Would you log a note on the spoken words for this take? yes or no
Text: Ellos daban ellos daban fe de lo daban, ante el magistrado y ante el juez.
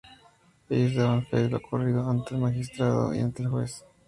yes